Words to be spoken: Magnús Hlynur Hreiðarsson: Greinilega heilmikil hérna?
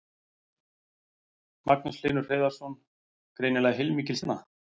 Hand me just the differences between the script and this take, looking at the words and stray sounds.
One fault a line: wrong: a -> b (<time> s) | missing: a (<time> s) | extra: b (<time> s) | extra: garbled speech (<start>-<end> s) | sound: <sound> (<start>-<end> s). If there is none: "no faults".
no faults